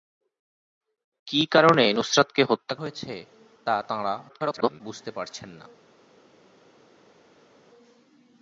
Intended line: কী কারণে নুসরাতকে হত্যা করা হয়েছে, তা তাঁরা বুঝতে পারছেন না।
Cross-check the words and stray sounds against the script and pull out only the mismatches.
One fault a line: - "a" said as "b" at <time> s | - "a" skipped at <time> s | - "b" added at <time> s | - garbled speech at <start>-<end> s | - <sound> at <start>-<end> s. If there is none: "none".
- "করা" skipped at 2.8 s
- garbled speech at 4.3-4.8 s